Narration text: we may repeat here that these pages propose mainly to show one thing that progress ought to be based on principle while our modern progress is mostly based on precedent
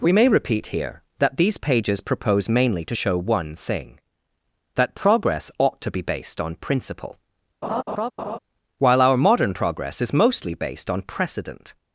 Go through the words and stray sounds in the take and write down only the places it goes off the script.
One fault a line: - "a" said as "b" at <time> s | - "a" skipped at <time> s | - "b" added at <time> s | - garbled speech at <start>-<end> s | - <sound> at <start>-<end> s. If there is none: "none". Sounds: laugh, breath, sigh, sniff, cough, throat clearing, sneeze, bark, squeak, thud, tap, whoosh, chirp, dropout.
- laugh at 7.6-8.4 s